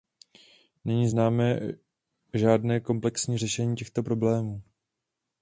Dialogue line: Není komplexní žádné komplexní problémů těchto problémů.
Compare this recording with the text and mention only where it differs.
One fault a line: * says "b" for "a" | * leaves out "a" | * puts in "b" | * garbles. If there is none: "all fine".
* says "známé" for "komplexní"
* says "řešení" for "problémů"